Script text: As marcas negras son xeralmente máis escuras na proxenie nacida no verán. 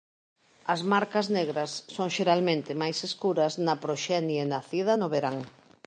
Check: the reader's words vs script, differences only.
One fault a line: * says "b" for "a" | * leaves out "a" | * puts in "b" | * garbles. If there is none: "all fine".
all fine